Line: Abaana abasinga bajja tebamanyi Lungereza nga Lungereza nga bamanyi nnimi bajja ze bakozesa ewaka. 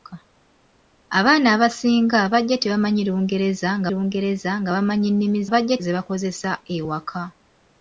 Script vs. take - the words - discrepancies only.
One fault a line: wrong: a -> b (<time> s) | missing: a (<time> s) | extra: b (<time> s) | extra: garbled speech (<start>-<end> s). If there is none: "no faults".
no faults